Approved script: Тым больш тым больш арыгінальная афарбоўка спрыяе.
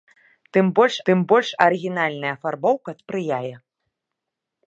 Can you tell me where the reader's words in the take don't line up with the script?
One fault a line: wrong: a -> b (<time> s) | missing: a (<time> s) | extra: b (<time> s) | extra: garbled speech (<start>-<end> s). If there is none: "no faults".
no faults